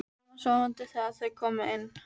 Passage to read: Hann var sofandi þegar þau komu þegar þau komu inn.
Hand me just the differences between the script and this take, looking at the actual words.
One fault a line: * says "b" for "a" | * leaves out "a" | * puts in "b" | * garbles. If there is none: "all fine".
* leaves out "þegar þau komu"